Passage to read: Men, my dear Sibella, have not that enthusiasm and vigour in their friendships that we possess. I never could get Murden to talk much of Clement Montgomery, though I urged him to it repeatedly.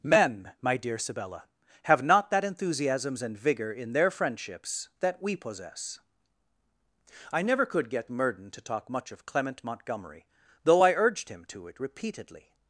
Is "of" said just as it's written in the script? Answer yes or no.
yes